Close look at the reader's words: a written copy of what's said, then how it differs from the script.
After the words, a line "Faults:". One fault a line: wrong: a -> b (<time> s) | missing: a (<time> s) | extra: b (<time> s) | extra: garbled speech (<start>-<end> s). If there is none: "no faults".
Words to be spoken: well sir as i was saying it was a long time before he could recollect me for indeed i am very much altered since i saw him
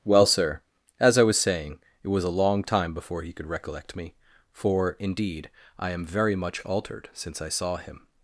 well sir as i was saying it was a long time before he could recollect me for indeed i am very much altered since i saw him
Faults:
no faults